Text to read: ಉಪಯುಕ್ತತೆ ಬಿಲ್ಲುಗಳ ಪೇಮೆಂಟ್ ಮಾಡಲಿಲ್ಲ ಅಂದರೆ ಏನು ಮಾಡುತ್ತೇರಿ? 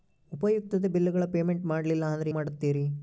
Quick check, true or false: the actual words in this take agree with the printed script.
false